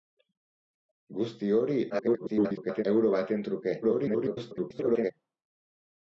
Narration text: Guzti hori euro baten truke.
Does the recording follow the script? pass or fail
fail